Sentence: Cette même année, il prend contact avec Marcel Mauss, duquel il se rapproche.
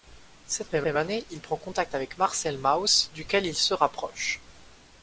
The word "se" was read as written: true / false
true